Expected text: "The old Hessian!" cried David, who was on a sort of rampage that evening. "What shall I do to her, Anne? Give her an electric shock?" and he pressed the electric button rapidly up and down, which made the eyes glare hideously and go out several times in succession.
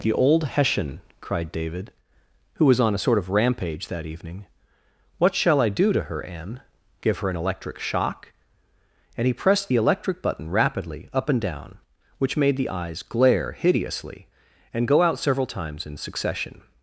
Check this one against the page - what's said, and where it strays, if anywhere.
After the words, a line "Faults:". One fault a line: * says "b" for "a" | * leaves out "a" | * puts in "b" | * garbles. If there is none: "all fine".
"The old Hessian!" cried David, who was on a sort of rampage that evening. "What shall I do to her, Anne? Give her an electric shock?" and he pressed the electric button rapidly up and down, which made the eyes glare hideously and go out several times in succession.
Faults:
all fine